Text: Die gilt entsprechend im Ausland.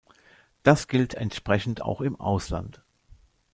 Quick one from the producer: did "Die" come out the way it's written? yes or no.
no